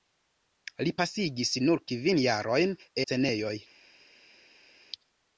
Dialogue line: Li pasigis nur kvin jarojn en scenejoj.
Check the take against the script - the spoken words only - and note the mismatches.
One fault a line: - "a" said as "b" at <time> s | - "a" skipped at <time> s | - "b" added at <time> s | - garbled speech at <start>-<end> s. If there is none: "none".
- "en" skipped at 2.8 s